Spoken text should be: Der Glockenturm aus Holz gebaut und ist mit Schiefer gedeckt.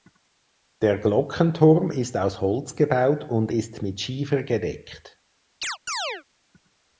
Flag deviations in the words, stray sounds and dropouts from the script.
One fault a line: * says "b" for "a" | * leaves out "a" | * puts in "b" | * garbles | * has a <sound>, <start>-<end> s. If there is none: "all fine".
* puts in "ist"
* has a chirp, 5.6-6.2 s